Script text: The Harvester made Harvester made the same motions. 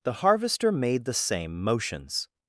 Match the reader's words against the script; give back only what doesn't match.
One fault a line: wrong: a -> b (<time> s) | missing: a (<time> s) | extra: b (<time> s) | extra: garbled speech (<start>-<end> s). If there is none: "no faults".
missing: Harvester made (1.1 s)